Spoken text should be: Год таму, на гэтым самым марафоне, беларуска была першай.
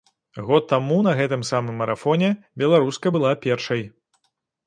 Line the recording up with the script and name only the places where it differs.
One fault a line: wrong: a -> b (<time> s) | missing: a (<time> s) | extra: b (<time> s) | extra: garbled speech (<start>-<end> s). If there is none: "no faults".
no faults